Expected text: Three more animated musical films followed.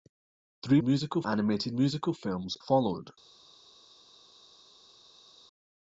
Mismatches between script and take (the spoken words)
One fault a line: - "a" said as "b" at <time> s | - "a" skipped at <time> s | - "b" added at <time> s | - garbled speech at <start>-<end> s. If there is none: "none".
- "more" said as "musical" at 0.8 s